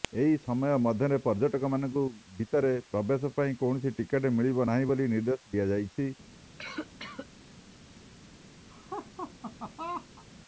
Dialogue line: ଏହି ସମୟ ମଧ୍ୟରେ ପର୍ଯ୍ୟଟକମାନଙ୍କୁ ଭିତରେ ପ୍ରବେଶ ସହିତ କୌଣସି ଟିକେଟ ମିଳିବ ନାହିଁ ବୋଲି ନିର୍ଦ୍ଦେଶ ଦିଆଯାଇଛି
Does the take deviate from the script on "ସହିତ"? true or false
true